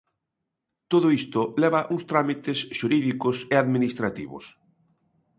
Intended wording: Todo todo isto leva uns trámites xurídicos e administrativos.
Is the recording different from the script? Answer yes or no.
yes